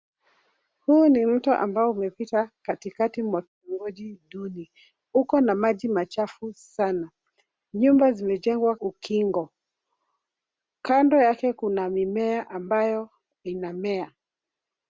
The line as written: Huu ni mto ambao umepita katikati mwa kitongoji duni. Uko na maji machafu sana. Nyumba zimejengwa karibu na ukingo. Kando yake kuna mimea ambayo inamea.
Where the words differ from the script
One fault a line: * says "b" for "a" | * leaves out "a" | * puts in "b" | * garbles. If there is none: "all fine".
* leaves out "karibu na"